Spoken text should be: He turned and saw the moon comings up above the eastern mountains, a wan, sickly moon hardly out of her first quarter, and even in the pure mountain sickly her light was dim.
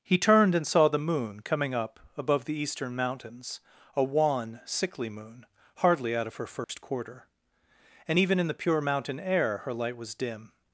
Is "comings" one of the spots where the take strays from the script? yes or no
yes